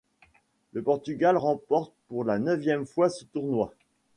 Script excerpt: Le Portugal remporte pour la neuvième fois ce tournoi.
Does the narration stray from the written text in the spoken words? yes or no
no